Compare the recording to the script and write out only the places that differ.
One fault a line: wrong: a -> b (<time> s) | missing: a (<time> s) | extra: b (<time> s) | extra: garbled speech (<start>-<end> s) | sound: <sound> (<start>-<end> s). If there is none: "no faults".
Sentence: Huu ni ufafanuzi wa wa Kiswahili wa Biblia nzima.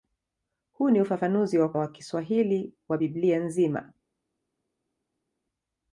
no faults